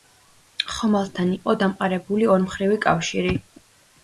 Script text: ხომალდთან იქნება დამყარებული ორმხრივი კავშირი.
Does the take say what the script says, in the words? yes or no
no